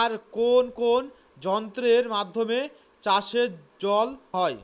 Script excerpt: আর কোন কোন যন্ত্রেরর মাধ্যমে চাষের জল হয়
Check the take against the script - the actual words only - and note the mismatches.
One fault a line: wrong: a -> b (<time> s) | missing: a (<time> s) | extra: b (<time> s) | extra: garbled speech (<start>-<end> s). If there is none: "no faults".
no faults